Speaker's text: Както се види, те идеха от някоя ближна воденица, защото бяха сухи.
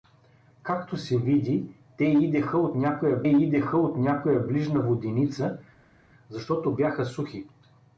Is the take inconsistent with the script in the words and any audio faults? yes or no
yes